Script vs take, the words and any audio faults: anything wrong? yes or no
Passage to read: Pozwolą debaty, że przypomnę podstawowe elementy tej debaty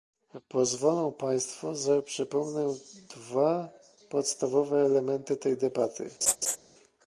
yes